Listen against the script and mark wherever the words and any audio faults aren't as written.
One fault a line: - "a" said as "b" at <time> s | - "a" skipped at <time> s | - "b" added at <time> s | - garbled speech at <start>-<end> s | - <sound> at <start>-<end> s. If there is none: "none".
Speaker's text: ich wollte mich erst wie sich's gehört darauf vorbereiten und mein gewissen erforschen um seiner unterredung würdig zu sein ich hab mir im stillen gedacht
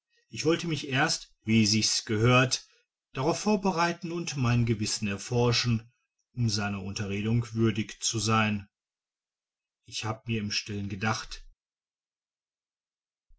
none